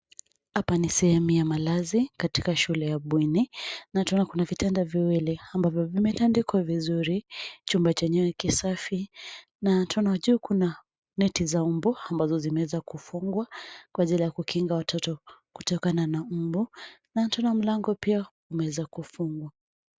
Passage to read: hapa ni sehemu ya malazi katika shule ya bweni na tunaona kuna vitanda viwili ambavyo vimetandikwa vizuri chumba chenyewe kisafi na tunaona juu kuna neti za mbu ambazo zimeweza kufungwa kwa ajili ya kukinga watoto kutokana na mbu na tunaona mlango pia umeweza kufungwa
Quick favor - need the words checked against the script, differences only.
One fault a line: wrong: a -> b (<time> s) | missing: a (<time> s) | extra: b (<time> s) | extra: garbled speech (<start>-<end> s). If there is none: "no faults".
no faults